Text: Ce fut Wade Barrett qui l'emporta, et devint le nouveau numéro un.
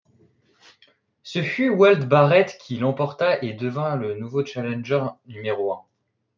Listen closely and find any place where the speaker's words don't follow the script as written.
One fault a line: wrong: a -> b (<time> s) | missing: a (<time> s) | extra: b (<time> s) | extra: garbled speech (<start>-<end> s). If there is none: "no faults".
extra: challenger (4.4 s)